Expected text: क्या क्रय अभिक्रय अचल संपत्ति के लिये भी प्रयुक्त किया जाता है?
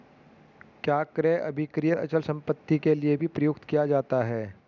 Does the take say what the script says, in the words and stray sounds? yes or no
yes